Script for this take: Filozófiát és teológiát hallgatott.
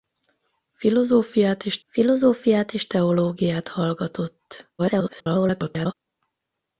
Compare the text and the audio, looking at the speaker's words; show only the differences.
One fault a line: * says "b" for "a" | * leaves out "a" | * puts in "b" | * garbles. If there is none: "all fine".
* puts in "filozófiát és"
* garbles